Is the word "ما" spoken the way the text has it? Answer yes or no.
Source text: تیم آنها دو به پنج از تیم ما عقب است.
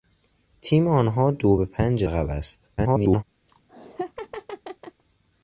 no